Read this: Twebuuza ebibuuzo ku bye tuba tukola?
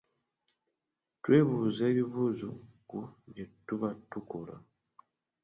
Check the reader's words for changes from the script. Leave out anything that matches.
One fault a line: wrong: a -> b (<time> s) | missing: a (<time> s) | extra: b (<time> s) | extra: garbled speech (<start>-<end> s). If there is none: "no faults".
no faults